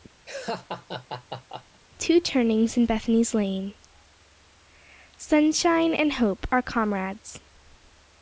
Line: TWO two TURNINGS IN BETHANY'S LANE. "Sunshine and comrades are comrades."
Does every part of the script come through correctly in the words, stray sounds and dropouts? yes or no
no